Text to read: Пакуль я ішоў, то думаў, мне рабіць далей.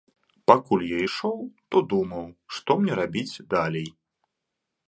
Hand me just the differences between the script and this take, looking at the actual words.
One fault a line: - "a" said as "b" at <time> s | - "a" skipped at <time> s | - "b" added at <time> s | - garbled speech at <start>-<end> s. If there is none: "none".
- "што" added at 2.6 s